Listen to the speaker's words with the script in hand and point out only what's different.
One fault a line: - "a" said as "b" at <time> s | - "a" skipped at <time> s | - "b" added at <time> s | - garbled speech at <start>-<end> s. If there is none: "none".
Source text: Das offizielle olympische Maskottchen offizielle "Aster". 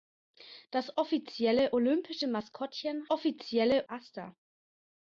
none